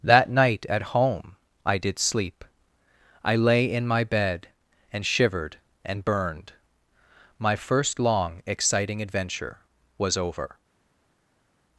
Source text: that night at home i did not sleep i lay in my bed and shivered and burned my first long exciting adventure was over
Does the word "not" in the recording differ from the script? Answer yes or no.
yes